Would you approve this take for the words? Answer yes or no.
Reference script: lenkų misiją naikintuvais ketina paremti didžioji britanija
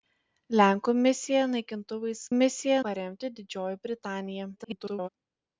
no